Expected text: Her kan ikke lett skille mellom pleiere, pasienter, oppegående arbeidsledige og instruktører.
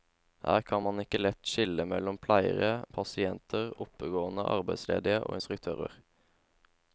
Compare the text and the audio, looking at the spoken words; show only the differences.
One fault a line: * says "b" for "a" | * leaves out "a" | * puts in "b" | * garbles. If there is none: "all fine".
* puts in "man"